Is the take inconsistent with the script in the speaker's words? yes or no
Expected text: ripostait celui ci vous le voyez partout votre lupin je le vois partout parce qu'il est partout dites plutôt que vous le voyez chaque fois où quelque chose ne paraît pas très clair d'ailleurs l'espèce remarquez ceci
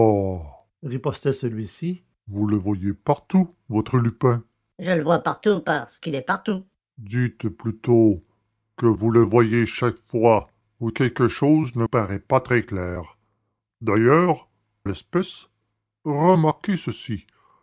no